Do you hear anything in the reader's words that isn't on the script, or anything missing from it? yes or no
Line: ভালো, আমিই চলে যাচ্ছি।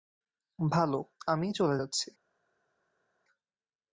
no